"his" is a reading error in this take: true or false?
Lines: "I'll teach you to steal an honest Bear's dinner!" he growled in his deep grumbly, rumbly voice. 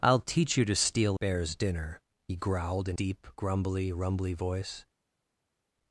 true